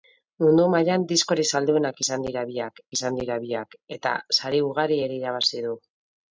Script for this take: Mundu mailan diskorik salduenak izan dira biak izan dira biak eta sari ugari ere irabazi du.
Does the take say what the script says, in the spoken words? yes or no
yes